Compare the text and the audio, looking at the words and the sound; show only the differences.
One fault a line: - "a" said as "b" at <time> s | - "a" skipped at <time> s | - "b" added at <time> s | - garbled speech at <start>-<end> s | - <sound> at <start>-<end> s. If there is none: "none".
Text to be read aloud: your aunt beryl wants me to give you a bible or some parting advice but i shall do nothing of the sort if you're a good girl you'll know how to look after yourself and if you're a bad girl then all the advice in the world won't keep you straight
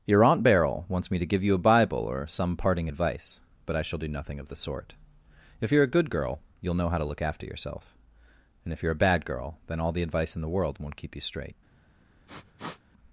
- sniff at 12.3-12.8 s